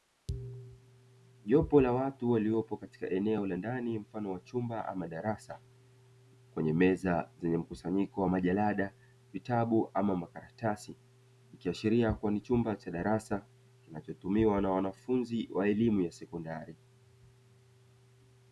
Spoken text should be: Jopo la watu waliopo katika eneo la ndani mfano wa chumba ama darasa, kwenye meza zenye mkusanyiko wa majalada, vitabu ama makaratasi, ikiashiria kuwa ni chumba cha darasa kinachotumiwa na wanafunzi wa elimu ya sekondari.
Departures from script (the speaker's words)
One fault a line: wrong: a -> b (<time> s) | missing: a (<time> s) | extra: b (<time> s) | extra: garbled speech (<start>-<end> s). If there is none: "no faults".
no faults